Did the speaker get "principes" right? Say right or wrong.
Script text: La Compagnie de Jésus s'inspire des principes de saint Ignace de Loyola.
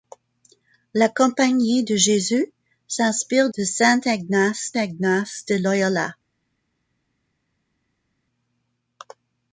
wrong